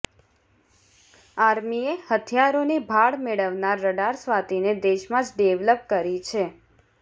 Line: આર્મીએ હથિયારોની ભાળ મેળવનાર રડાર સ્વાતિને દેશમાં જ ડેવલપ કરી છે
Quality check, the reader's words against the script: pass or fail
pass